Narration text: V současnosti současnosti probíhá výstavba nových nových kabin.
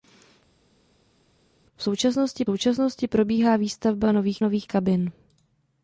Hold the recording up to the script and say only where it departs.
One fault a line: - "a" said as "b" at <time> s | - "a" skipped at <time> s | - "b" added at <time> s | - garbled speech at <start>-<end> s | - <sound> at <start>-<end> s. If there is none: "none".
none